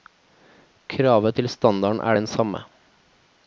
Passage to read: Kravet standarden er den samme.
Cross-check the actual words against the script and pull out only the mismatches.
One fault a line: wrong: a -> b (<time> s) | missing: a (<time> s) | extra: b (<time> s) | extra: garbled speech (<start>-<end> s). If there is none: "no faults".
extra: til (1.4 s)